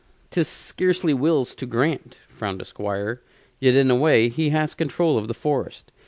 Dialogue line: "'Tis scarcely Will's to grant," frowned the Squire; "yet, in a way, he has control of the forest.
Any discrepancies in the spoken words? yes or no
no